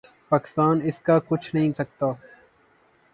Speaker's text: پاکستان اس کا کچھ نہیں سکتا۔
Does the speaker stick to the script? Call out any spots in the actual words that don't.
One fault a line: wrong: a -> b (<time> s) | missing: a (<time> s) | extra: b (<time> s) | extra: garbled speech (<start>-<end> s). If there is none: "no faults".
no faults